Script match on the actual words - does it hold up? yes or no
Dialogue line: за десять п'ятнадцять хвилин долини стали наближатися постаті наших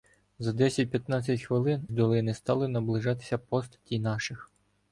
yes